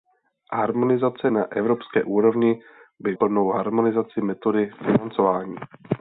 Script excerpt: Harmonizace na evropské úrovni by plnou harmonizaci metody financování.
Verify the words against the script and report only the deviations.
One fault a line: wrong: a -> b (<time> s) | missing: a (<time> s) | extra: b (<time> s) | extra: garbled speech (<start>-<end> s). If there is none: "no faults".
no faults